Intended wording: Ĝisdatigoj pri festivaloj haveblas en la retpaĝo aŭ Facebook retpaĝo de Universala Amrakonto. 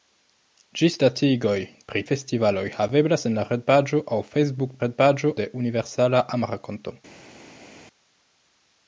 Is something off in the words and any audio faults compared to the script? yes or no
no